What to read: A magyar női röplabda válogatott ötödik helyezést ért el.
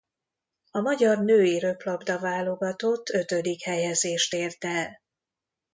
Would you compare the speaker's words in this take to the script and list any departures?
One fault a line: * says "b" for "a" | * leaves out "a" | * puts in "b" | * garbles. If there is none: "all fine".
all fine